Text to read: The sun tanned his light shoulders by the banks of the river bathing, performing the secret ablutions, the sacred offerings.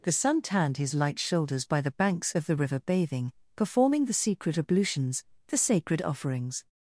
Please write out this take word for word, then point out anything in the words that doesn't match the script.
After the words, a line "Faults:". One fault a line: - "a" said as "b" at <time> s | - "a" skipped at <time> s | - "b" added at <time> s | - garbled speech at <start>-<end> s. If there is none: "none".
The sun tanned his light shoulders by the banks of the river bathing, performing the secret ablutions, the sacred offerings.
Faults:
none